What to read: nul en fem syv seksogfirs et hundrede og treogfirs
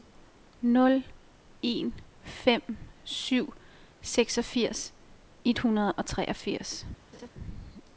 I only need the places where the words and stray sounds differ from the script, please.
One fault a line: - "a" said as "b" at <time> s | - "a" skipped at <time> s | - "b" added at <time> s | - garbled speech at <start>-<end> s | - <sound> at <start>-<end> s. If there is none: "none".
- laugh at 7.1-7.3 s